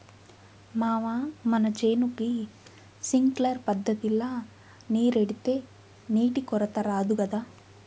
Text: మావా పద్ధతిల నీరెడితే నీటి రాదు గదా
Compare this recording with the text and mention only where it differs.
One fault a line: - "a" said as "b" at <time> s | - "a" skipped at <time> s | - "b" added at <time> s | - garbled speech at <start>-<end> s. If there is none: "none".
- "మన చేనుకి సింక్లర్" added at 1.4 s
- "కొరత" added at 6.4 s